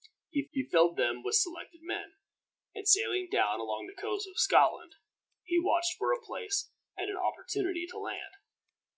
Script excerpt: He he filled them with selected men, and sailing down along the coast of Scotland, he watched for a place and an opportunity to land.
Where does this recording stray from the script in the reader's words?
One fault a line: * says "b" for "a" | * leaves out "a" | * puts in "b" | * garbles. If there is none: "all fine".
all fine